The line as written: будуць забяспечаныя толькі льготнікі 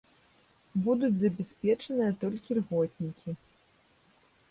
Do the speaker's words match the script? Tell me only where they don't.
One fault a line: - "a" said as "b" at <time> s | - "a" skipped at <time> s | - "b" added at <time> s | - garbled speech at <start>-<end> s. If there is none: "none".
none